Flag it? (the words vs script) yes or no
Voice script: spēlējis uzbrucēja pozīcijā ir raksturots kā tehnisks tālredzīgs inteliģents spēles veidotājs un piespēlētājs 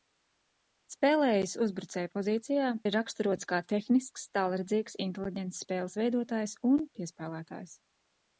no